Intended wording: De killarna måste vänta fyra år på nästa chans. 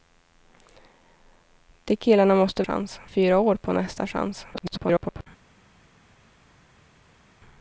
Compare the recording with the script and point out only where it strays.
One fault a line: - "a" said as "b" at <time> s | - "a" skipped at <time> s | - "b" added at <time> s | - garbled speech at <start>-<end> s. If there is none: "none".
- "vänta" said as "chans" at 2.6 s
- garbled speech at 4.5-5.3 s